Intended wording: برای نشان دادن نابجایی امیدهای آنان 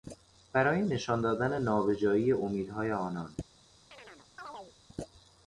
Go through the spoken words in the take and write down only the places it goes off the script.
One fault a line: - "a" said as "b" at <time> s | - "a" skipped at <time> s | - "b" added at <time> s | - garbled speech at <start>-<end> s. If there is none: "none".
none